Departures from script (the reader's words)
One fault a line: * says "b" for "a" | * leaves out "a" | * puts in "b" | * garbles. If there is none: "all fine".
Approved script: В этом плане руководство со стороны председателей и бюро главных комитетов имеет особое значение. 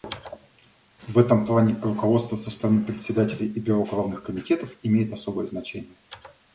all fine